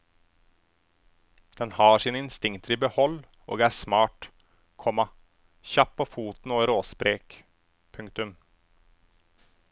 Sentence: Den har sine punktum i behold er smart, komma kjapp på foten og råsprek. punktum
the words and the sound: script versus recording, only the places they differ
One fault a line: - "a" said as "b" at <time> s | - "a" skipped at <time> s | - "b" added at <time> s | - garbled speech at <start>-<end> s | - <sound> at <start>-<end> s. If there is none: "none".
- "punktum" said as "instinkter" at 2.2 s
- "og" added at 3.5 s